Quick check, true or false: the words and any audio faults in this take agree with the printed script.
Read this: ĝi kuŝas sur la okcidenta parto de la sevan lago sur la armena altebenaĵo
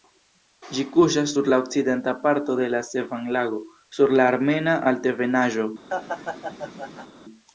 false